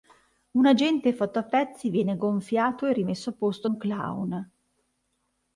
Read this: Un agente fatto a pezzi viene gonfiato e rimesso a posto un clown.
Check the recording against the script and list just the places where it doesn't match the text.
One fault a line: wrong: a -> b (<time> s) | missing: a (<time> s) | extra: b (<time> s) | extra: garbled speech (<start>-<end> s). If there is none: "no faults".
no faults